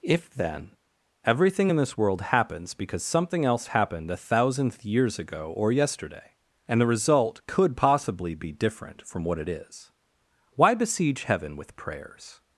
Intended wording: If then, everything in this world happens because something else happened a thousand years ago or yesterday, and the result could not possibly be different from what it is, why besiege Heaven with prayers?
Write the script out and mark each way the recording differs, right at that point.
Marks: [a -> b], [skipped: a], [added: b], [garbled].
If then, everything in this world happens because something else happened a [thousand -> thousandth] years ago or yesterday, and the result could [skipped: not] possibly be different from what it is, why besiege Heaven with prayers?